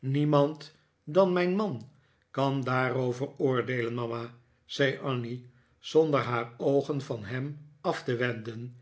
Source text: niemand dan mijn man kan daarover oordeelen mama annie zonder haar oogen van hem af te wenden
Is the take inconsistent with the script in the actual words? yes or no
yes